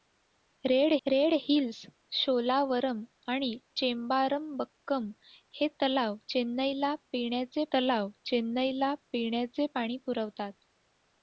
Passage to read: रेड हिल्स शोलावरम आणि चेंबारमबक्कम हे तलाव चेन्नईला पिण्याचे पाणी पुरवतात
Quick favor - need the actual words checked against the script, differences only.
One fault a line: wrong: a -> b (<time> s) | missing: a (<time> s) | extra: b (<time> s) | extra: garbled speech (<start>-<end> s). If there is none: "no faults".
extra: रेड (1.1 s)
extra: तलाव चेन्नईला पिण्याचे (7.7 s)